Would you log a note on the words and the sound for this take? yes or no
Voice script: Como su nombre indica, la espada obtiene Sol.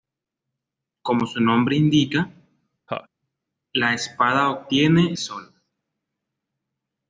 yes